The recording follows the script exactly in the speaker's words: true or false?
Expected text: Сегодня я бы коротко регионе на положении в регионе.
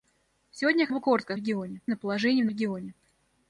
true